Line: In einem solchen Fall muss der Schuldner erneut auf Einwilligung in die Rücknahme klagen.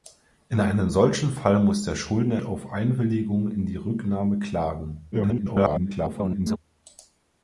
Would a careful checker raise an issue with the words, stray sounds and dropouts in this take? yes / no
yes